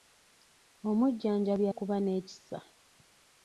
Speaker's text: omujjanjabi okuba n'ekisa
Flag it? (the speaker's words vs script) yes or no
no